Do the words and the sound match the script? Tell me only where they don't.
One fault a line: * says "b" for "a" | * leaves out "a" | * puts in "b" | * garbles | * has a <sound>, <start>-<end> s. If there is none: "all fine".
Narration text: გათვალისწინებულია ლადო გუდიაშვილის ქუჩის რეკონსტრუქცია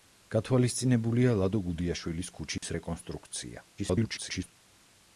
* has a dropout, 2.6-2.6 s
* garbles